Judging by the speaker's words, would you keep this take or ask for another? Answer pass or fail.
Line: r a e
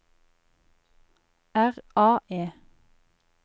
pass